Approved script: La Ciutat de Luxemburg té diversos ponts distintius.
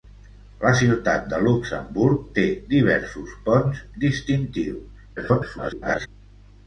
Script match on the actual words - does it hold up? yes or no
no